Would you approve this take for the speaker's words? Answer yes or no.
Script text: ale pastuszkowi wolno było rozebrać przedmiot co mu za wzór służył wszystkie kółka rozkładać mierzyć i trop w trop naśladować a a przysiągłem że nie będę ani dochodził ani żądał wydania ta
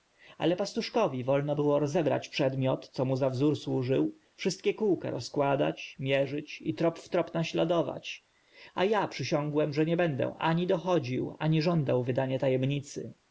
yes